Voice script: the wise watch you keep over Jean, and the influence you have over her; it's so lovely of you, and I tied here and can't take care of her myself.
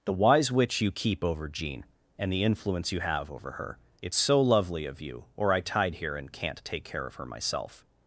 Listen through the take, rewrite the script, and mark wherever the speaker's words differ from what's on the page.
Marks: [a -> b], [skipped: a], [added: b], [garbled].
the wise [watch -> witch] you keep over Jean, and the influence you have over her; it's so lovely of you, [and -> or] I tied here and can't take care of her myself.